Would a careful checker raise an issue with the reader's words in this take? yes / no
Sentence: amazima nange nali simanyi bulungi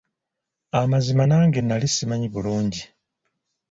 no